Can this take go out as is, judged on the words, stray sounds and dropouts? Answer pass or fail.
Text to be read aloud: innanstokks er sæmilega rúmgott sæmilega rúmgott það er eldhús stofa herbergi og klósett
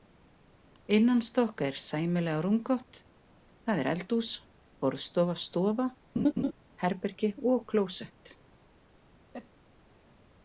fail